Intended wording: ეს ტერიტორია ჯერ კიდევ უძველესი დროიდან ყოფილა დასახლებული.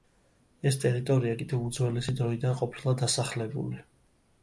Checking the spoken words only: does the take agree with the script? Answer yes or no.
no